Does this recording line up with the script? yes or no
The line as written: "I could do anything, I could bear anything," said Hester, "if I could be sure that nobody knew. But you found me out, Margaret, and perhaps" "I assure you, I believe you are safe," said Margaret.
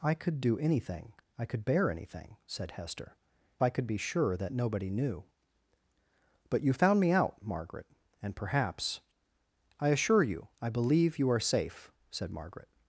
no